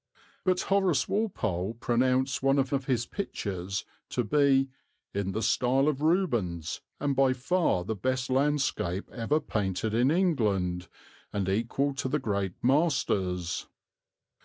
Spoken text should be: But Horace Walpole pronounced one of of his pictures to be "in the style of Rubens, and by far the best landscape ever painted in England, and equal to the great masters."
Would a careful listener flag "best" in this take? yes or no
no